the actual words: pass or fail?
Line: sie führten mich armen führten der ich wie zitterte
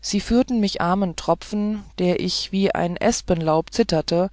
fail